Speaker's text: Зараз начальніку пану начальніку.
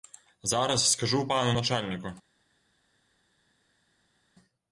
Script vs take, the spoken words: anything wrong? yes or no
yes